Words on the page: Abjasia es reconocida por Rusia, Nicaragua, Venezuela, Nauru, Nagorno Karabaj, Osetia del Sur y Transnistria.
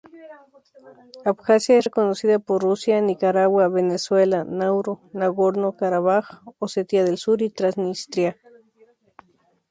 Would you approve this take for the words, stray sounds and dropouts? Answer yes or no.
yes